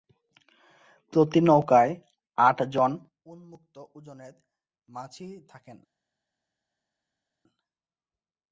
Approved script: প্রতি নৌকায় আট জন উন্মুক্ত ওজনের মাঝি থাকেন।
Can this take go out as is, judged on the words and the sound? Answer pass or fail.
pass